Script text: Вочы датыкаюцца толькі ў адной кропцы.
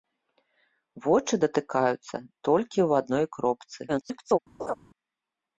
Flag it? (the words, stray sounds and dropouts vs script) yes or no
yes